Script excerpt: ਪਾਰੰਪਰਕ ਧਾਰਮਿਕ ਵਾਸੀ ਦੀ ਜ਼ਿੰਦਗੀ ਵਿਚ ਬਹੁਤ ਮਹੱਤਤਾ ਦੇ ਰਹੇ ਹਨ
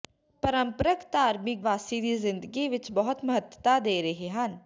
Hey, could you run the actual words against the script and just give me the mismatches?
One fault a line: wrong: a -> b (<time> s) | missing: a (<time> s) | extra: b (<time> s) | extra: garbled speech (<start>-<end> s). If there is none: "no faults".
no faults